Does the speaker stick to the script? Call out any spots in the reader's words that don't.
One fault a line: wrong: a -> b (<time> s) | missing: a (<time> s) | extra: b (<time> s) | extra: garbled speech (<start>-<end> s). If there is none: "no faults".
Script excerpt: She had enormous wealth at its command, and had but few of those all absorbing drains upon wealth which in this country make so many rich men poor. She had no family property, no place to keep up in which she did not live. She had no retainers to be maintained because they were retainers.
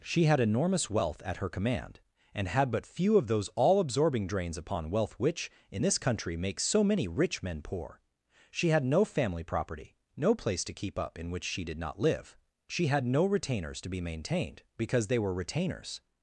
wrong: its -> her (1.4 s)